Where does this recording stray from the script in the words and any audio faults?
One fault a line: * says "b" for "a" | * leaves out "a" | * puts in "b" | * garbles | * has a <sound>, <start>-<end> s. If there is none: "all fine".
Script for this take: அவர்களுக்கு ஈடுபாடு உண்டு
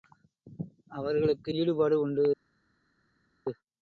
all fine